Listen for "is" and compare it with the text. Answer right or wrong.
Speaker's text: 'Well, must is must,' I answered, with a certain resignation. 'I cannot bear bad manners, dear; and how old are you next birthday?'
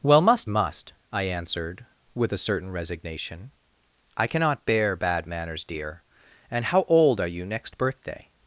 wrong